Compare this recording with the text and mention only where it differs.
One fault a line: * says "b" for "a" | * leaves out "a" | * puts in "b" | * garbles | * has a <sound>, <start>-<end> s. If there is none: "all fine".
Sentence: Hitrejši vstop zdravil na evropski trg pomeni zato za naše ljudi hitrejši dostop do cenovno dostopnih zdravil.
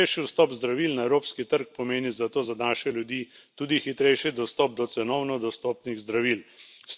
* puts in "tudi"